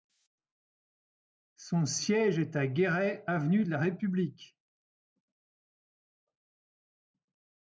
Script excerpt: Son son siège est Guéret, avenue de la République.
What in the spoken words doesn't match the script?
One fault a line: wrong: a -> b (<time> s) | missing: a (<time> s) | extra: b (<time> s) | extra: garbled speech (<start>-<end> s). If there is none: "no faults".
missing: son (1.9 s)
extra: à (2.5 s)